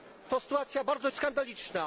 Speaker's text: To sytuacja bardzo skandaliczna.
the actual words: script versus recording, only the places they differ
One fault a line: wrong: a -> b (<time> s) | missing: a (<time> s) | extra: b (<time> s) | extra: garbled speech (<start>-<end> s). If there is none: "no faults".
no faults